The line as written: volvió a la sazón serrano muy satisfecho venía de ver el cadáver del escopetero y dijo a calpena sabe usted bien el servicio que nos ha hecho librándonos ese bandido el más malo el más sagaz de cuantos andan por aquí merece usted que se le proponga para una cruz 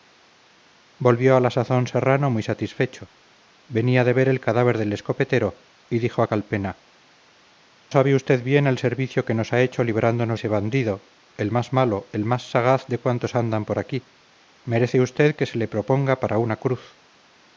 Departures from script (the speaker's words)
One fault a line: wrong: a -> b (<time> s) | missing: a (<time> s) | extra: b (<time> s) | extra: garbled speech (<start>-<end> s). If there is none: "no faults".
no faults